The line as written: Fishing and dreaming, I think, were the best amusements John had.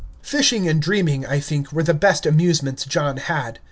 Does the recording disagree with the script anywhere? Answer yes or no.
no